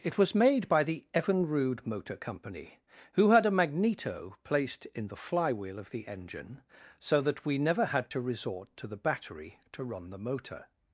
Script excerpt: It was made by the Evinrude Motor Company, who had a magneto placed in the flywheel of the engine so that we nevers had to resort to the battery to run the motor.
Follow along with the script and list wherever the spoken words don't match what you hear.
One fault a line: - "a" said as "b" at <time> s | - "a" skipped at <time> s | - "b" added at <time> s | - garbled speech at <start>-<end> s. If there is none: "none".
- "nevers" said as "never" at 7.6 s